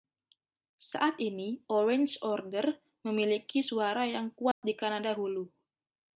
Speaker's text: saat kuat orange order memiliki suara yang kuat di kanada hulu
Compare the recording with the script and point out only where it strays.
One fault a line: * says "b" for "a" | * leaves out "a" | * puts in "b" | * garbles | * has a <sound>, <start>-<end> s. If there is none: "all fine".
* says "ini" for "kuat"
* has a dropout, 4.5-4.6 s